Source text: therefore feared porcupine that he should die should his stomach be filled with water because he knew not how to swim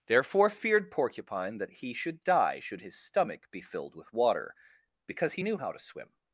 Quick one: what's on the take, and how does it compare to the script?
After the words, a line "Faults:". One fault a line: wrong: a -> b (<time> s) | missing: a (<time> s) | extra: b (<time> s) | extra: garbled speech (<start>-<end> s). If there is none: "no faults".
therefore feared porcupine that he should die should his stomach be filled with water because he knew how to swim
Faults:
missing: not (5.6 s)